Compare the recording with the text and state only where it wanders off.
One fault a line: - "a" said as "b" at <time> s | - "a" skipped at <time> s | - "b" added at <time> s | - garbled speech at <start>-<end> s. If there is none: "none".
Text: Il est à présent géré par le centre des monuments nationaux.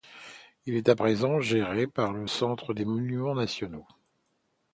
none